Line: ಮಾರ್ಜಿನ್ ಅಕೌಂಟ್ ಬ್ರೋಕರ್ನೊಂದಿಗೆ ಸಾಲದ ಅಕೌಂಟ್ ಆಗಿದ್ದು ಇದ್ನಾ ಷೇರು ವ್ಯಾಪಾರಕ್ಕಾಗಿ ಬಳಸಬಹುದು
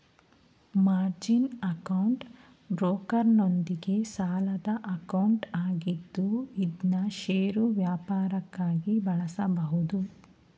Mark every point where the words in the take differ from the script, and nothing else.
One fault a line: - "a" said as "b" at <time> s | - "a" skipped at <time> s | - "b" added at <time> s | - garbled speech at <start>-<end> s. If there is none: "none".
none